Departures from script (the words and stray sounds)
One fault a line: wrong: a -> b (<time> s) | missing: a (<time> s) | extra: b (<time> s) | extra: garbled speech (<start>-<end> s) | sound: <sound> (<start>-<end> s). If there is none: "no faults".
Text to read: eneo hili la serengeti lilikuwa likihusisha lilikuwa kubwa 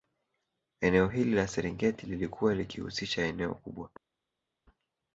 wrong: lilikuwa -> eneo (3.3 s)